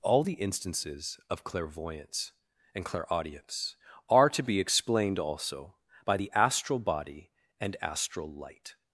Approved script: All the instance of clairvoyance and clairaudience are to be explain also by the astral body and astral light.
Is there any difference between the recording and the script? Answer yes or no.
yes